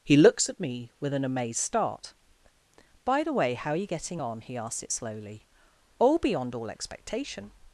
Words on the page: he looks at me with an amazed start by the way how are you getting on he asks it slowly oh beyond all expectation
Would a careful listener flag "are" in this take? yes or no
no